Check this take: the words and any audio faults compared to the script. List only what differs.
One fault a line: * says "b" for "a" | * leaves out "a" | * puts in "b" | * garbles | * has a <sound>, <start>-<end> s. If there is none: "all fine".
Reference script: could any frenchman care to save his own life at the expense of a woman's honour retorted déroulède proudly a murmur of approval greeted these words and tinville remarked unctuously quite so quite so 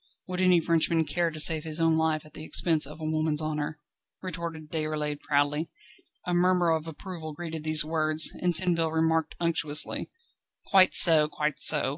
* says "would" for "could"